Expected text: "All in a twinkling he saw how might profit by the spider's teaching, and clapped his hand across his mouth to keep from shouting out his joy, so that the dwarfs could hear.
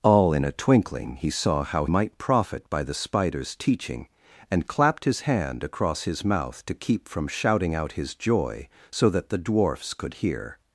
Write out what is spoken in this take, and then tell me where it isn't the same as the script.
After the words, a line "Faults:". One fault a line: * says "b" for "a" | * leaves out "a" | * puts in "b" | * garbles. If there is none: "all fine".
"All in a twinkling he saw how might profit by the spider's teaching, and clapped his hand across his mouth to keep from shouting out his joy, so that the dwarfs could hear.
Faults:
all fine